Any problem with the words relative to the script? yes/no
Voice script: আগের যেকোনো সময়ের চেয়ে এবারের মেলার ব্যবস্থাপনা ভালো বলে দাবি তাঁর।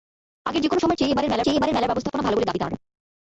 yes